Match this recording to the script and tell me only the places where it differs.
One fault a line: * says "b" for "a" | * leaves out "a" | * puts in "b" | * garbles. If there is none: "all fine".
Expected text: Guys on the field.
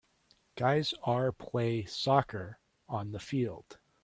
* puts in "are play soccer"